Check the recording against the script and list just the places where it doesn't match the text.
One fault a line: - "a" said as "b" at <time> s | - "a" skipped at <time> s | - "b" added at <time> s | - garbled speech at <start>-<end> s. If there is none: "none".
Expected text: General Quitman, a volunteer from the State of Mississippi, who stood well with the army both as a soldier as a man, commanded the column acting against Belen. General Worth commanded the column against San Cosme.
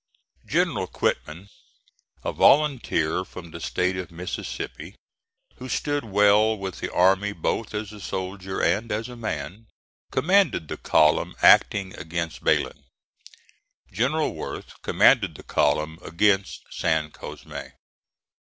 - "and" added at 8.6 s